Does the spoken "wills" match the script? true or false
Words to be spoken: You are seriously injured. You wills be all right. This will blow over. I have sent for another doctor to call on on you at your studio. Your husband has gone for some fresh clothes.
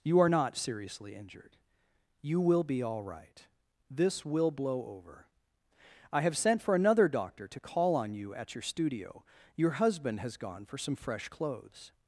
false